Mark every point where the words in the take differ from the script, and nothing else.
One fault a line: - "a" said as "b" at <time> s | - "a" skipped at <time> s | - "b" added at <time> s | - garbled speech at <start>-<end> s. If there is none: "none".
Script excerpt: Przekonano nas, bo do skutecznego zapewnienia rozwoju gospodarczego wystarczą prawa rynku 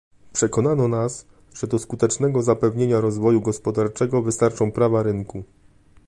- "bo" said as "że" at 1.5 s